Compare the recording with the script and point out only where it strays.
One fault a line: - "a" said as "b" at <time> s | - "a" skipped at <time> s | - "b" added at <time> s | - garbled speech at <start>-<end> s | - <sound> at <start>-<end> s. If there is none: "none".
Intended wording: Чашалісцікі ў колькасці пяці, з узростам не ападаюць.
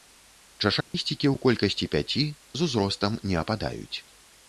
- dropout at 0.8-0.9 s